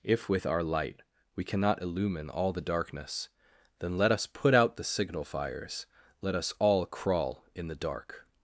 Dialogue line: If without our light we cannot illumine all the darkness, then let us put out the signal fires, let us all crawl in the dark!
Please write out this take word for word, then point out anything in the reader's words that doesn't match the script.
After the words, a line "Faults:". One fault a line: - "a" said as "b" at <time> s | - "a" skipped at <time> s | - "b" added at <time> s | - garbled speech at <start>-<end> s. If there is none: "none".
If with our light we cannot illumine all the darkness, then let us put out the signal fires, let us all crawl in the dark!
Faults:
- "without" said as "with" at 0.3 s